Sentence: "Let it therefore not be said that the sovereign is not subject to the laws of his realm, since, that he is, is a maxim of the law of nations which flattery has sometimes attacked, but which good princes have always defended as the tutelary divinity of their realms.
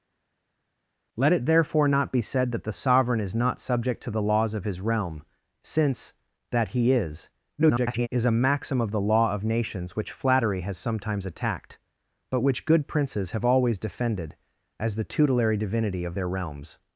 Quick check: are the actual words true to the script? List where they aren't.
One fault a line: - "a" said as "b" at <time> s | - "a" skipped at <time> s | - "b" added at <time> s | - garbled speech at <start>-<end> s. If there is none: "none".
- garbled speech at 7.6-8.1 s